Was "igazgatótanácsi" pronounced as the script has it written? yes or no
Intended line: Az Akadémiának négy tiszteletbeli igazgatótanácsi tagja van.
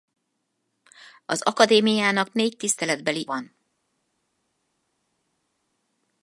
no